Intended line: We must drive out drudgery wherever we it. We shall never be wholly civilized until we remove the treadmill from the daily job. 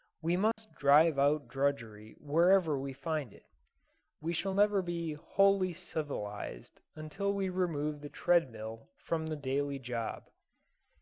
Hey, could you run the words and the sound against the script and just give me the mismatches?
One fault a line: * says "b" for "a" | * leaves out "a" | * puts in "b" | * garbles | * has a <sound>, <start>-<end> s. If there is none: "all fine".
* has a dropout, 0.5-0.6 s
* puts in "find"